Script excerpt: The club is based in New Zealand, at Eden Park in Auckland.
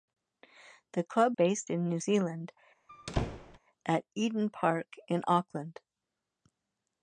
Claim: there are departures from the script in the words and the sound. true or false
true